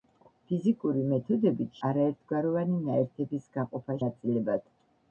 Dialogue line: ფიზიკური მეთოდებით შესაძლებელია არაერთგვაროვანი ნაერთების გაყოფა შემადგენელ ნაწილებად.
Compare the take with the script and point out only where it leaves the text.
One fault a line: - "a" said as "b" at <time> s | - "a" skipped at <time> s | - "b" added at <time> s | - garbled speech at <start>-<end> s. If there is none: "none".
- "შესაძლებელია" skipped at 1.8 s
- "შემადგენელ" skipped at 4.0 s